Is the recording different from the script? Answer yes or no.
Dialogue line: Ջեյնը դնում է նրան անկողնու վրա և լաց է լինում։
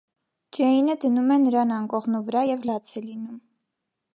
no